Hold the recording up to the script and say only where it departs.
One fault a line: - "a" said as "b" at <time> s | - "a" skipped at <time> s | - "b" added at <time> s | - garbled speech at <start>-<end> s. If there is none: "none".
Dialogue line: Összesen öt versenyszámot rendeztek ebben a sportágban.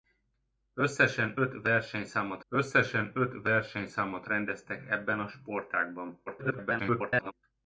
- "összesen öt versenyszámot" added at 2.5 s
- garbled speech at 6.3-7.3 s